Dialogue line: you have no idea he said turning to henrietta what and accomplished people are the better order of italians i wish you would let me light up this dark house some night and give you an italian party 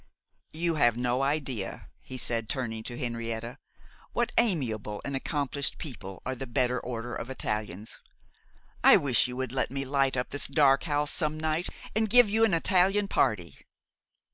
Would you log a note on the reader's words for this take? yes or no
yes